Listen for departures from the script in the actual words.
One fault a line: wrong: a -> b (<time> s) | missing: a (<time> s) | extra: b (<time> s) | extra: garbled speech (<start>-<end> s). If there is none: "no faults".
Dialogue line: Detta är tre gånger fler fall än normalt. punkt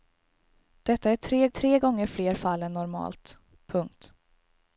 extra: tre (1.5 s)